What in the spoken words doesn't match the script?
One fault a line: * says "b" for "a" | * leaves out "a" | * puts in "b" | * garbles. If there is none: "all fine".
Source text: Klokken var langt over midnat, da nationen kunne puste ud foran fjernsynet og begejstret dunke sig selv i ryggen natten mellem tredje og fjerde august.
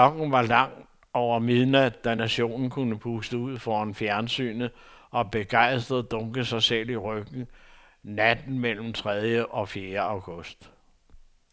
all fine